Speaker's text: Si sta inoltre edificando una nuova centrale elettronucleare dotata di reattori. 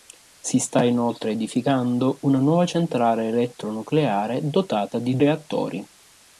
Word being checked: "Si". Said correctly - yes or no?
yes